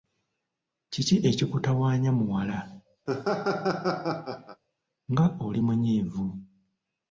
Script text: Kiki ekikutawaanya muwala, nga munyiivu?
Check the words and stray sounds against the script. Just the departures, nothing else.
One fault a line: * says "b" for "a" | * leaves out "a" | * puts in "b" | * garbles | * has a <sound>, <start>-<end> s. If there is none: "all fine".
* has a laugh, 3.1-4.6 s
* puts in "oli"